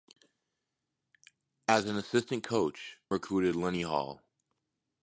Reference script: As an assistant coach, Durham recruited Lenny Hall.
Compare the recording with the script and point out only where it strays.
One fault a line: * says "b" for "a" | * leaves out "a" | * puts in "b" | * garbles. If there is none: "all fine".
* leaves out "Durham"